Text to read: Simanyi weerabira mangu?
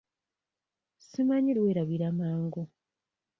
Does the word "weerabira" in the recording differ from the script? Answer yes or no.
no